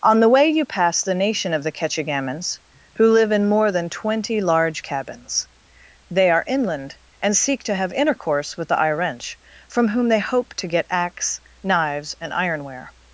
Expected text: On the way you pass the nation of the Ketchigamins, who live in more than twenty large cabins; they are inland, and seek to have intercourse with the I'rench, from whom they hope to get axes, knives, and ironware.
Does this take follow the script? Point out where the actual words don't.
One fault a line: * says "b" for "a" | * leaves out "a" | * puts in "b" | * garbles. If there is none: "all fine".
* says "axe" for "axes"